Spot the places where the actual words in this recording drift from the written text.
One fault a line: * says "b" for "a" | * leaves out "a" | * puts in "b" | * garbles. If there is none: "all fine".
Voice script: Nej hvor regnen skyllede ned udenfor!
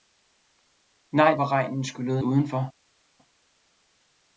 * leaves out "ned"